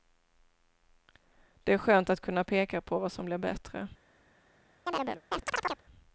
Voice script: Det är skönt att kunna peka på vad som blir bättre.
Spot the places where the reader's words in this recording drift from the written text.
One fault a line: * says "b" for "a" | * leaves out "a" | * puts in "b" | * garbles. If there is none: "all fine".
all fine